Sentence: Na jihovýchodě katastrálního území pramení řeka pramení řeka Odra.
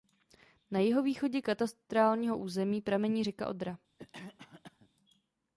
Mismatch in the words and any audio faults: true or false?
true